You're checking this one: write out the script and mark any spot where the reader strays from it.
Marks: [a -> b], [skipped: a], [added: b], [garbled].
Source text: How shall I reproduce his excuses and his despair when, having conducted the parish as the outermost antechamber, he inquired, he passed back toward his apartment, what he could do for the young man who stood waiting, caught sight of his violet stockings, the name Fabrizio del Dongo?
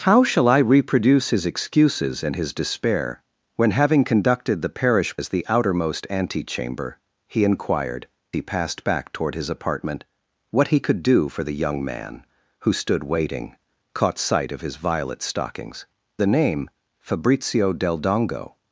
How shall I reproduce his excuses and his despair when, having conducted the parish as the outermost antechamber, he inquired, he passed back toward his apartment, what he could do for the young man who stood waiting, caught sight of his violet stockings, the name Fabrizio del Dongo?